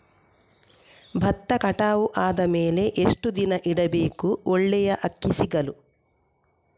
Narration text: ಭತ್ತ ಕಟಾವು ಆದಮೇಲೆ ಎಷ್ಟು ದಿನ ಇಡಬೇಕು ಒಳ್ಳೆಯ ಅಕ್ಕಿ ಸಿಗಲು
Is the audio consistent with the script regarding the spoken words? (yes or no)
yes